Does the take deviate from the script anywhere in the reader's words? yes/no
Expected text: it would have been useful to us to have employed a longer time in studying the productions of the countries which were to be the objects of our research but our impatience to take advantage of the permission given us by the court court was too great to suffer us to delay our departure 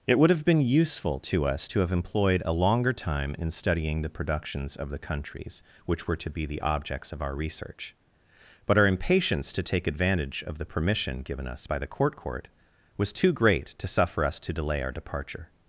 no